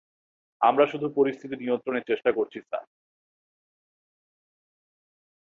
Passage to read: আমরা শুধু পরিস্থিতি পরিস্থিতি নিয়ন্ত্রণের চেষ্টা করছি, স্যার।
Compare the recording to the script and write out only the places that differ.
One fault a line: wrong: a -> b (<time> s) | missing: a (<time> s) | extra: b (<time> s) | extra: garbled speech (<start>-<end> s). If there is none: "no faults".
missing: পরিস্থিতি (1.6 s)